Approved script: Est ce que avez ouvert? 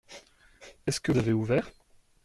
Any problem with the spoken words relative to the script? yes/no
no